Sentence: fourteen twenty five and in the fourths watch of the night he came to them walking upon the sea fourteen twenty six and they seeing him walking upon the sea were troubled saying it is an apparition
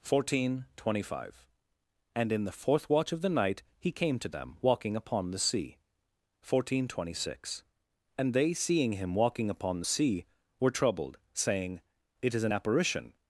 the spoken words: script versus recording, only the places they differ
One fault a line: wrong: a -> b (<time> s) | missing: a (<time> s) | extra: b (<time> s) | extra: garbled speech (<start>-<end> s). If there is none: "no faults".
wrong: fourths -> fourth (2.5 s)